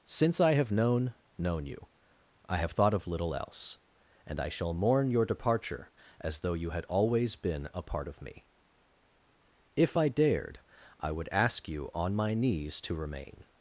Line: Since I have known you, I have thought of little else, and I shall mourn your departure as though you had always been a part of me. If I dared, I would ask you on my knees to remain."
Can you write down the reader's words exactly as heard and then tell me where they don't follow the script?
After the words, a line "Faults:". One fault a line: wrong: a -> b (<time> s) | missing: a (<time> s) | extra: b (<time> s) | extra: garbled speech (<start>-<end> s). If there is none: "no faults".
Since I have known known you, I have thought of little else, and I shall mourn your departure as though you had always been a part of me. If I dared, I would ask you on my knees to remain."
Faults:
extra: known (1.4 s)